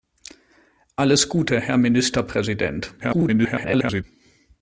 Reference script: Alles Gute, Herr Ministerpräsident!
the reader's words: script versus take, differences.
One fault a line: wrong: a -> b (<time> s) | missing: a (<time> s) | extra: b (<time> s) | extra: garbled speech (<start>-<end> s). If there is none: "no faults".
extra: garbled speech (3.0-4.0 s)